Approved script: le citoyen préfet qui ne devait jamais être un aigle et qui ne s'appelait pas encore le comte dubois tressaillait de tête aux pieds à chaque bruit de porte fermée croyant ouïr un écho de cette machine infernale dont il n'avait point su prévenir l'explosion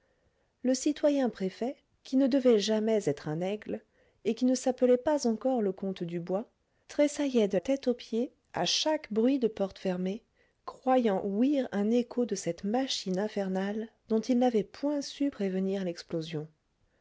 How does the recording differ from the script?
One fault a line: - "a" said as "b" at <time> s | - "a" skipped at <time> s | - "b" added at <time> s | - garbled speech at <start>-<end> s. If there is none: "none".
none